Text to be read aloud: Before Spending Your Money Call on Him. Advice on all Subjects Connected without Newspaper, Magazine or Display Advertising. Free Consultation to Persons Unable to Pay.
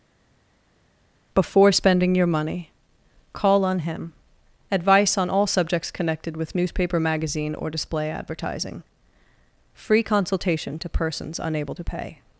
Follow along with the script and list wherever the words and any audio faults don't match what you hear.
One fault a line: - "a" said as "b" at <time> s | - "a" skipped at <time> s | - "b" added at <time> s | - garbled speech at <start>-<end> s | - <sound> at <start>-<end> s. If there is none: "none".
- "without" said as "with" at 6.4 s